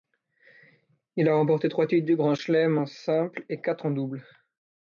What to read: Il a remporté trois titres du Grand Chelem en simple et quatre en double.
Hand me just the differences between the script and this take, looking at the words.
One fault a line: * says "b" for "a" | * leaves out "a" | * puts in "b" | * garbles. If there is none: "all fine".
all fine